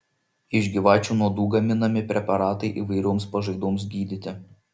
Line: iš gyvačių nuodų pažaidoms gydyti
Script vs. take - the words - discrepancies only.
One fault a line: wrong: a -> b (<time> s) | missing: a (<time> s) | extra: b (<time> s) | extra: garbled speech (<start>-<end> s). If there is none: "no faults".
extra: gaminami preparatai įvairioms (1.6 s)